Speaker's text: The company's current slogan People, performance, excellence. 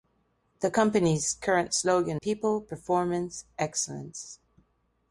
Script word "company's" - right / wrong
right